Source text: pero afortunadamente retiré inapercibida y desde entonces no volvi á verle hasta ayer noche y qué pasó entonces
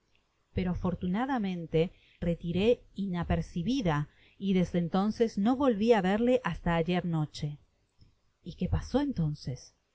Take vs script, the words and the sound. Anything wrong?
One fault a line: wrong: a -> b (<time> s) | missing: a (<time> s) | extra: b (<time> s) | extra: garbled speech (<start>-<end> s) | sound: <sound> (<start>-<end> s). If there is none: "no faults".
no faults